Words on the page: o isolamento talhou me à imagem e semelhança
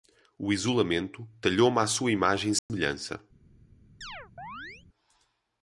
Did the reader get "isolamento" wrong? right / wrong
right